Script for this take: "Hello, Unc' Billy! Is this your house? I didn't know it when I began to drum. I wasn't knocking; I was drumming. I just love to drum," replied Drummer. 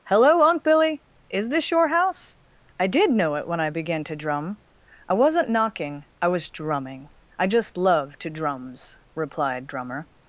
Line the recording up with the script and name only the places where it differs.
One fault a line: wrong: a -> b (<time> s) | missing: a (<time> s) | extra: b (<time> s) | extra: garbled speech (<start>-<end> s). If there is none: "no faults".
wrong: didn't -> did (2.9 s)
wrong: drum -> drums (8.3 s)